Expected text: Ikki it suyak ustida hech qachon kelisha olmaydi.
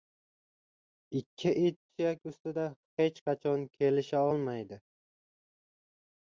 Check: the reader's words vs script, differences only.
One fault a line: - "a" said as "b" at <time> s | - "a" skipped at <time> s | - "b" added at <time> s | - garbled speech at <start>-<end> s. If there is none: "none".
none